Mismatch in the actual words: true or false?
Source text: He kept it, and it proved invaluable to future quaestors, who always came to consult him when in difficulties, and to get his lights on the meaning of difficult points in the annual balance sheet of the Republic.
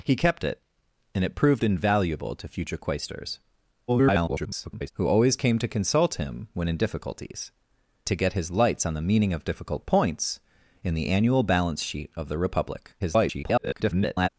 true